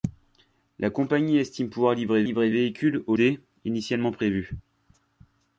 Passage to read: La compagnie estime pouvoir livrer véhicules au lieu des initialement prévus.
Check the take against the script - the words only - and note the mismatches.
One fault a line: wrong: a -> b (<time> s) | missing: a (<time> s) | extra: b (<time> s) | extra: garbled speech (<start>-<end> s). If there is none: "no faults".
extra: livrer (2.2 s)
missing: lieu (3.1 s)